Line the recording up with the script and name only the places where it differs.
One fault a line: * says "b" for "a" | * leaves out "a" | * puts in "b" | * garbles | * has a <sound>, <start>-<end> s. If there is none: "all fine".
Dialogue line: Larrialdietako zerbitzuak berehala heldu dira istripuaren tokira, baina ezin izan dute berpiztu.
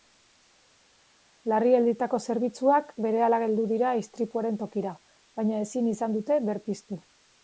all fine